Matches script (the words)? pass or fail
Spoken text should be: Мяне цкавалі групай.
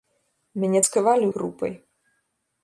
pass